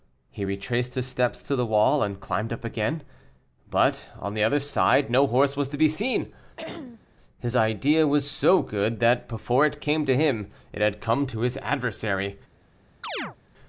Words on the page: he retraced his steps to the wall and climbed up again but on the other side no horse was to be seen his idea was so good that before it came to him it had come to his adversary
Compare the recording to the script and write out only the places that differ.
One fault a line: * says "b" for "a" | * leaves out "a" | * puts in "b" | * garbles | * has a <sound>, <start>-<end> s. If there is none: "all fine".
* has a throat clearing, 6.6-7.1 s
* has a chirp, 13.0-13.4 s